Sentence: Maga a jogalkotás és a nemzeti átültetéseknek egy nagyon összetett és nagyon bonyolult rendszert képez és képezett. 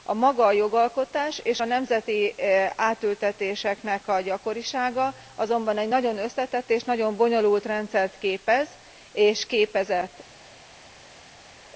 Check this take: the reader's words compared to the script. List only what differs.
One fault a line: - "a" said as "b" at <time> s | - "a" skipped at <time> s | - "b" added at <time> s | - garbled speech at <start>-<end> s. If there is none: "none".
- "a gyakorisága azonban" added at 4.1 s